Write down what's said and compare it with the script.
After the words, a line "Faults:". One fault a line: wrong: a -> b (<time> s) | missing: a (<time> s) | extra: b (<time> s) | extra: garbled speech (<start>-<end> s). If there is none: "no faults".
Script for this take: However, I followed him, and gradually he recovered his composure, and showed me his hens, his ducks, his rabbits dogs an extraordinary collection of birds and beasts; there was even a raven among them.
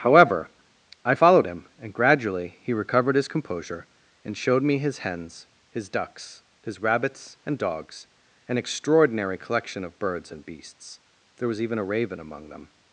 However, I followed him, and gradually he recovered his composure, and showed me his hens, his ducks, his rabbits and dogs an extraordinary collection of birds and beasts; there was even a raven among them.
Faults:
extra: and (7.4 s)